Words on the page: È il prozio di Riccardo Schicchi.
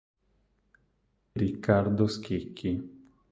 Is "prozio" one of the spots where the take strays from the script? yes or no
yes